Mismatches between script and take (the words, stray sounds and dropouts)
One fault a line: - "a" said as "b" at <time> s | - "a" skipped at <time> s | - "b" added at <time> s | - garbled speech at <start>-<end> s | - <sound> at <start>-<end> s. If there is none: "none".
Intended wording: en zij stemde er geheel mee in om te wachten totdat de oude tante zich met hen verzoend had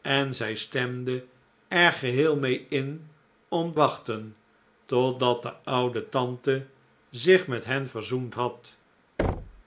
- "te" skipped at 3.8 s
- thud at 9.2-9.6 s